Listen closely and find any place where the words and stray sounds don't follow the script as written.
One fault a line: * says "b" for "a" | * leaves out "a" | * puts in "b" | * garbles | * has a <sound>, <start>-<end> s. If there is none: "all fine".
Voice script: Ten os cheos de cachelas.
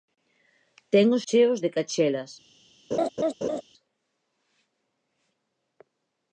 * has a laugh, 2.9-3.6 s